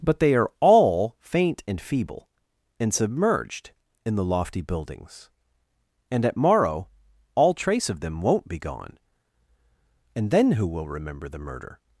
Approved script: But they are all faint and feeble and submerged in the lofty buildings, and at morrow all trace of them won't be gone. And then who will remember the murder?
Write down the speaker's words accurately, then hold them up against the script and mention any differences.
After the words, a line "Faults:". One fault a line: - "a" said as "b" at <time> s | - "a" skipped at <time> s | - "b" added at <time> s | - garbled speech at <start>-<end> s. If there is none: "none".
But they are all faint and feeble and submerged in the lofty buildings, and at morrow all trace of them won't be gone. And then who will remember the murder?
Faults:
none